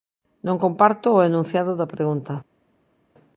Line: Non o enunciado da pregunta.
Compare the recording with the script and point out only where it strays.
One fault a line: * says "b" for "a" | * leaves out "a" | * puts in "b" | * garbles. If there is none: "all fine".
* puts in "comparto"